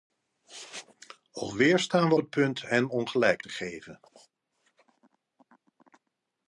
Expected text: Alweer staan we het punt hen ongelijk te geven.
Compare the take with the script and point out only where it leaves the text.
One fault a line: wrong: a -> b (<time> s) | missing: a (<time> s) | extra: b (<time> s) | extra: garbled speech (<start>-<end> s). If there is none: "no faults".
no faults